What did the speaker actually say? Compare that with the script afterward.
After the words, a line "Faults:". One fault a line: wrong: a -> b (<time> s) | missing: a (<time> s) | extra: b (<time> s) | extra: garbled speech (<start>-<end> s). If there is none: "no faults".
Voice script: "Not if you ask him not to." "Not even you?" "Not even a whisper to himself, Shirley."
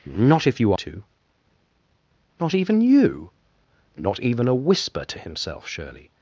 "Not if you to." "Not even you?" "Not even a whisper to himself, Shirley."
Faults:
missing: ask him not (0.7 s)